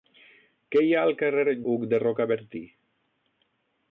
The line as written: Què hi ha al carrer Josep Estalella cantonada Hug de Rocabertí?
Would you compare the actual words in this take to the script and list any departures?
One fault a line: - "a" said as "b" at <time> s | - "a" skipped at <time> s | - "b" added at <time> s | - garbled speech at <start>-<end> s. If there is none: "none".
- "Josep Estalella cantonada" skipped at 1.5 s